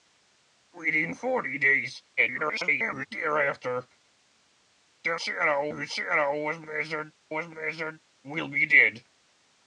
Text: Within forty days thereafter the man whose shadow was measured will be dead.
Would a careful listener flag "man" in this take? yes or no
yes